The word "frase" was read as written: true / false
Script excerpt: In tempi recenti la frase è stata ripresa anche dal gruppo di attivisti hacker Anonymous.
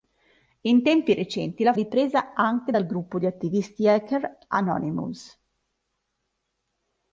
false